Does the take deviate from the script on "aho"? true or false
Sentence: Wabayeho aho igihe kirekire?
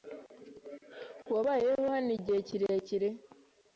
true